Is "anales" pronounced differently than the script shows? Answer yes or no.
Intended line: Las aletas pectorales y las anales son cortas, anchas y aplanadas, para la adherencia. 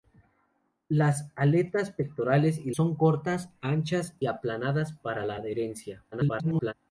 yes